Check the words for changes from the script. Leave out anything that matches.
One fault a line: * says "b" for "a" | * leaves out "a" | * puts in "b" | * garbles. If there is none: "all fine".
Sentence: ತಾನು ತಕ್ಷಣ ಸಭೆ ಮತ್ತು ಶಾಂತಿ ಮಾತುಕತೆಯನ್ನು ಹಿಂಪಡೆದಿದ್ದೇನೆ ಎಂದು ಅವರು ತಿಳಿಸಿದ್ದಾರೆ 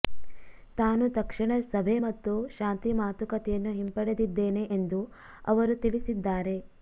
all fine